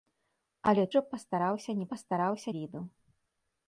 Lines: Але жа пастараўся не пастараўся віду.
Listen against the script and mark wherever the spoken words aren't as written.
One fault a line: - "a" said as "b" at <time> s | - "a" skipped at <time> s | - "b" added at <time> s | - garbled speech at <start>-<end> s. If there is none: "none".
none